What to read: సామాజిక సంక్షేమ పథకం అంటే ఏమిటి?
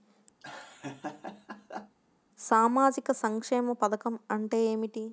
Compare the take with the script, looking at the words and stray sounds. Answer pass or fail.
fail